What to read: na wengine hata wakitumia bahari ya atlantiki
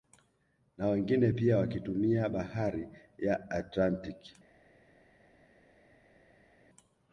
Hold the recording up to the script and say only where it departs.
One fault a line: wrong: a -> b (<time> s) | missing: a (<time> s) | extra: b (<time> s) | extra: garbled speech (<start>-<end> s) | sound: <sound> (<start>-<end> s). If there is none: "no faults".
wrong: hata -> pia (1.3 s)